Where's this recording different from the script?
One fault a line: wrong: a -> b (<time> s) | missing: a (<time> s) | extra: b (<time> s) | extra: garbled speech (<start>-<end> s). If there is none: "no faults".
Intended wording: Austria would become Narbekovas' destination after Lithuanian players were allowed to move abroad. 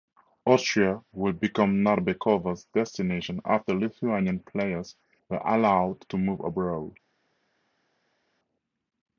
no faults